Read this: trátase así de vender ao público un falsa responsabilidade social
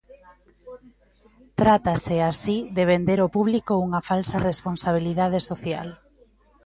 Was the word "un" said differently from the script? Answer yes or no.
yes